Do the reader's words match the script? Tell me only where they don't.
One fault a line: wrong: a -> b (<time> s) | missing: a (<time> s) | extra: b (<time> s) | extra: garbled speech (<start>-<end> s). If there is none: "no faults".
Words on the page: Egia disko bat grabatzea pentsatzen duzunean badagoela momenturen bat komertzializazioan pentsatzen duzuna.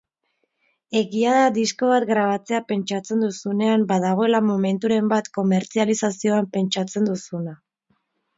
extra: da (1.4 s)